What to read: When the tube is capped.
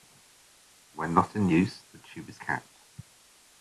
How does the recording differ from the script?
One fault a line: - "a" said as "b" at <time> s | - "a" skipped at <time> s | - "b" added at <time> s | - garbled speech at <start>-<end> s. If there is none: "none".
- "not in use" added at 1.1 s